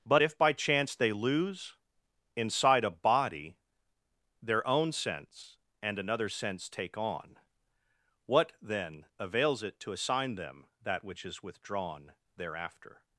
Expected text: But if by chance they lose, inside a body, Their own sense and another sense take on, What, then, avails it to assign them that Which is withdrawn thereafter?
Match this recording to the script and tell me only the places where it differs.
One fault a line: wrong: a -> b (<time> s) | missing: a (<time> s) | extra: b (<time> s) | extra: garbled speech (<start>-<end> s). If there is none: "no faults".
no faults